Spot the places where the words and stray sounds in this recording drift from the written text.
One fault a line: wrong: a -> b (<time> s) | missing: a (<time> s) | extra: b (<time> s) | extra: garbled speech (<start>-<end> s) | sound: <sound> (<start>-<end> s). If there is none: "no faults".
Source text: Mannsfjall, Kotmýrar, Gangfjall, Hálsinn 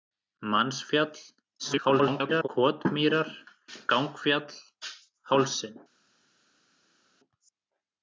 extra: garbled speech (1.6-2.5 s)